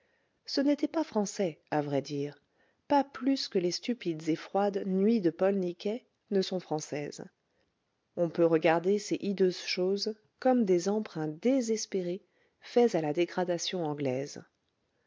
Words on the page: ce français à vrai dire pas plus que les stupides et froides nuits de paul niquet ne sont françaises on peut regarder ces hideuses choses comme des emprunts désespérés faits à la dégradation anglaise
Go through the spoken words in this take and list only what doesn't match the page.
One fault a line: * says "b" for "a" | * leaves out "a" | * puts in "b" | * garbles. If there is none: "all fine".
* puts in "n'était pas"